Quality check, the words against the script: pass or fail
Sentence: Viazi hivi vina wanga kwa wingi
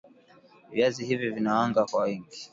pass